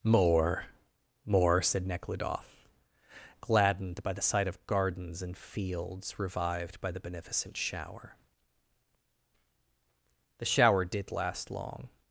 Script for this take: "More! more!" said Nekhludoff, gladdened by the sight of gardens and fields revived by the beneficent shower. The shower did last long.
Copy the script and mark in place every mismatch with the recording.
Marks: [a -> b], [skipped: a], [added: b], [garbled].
"More! more!" said Nekhludoff, gladdened by the sight of gardens and fields revived by the beneficent shower. The shower did last long.